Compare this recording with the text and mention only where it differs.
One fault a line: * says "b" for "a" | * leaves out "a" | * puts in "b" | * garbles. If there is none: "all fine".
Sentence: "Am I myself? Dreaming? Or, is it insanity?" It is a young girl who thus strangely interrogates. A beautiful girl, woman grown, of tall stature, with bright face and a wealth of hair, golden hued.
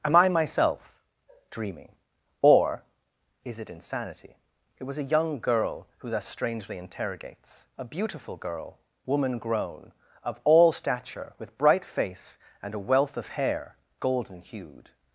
* says "was" for "is"
* says "all" for "tall"